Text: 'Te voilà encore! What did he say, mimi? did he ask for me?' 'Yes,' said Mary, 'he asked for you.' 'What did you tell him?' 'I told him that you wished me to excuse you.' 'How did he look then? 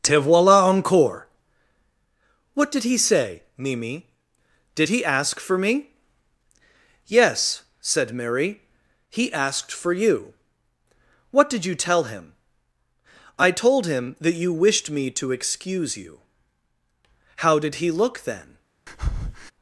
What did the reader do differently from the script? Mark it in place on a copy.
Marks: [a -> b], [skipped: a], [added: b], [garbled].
'Te voilà encore! What did he say, mimi? did he ask for me?' 'Yes,' said Mary, 'he asked for you.' 'What did you tell him?' 'I told him that you wished me to excuse you.' 'How did he look then?